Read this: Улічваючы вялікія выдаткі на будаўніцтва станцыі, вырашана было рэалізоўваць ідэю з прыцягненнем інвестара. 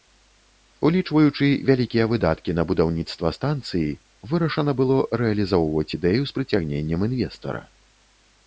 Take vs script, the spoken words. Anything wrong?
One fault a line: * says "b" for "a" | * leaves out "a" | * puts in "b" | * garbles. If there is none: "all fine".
all fine